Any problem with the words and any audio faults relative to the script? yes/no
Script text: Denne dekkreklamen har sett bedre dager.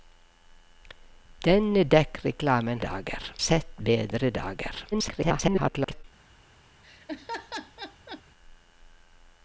yes